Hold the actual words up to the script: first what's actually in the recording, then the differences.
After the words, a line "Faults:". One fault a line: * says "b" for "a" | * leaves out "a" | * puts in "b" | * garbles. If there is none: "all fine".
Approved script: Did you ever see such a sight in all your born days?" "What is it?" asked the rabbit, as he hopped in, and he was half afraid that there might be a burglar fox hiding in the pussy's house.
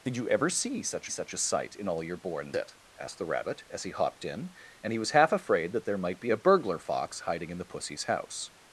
Did you ever see such such a sight in all your born it?" asked the rabbit, as he hopped in, and he was half afraid that there might be a burglar fox hiding in the pussy's house.
Faults:
* puts in "such"
* leaves out "days What is"